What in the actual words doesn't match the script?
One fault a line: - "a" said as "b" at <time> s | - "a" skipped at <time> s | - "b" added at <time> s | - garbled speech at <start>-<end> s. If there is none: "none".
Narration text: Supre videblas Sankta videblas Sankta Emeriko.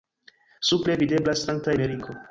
- "videblas Sankta" skipped at 1.8 s